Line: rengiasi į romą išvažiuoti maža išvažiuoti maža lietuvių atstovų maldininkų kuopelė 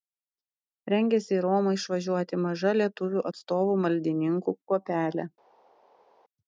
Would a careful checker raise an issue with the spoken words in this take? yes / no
yes